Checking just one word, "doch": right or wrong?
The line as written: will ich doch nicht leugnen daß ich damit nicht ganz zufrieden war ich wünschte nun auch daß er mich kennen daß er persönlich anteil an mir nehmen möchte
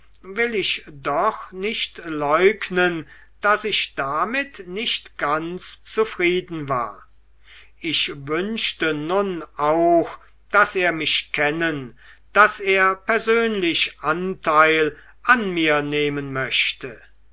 right